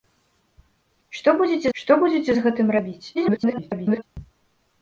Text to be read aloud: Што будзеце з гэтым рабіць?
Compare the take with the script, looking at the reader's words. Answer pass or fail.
fail